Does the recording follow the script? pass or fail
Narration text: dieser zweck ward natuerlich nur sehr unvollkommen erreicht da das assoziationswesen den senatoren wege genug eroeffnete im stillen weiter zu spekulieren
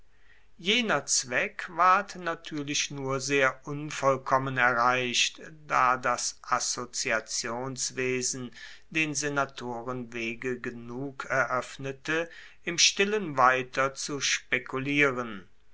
fail